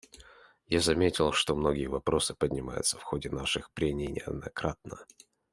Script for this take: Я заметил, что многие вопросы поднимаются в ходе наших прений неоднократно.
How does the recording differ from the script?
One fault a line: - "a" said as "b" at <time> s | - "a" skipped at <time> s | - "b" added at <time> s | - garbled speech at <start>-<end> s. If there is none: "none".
none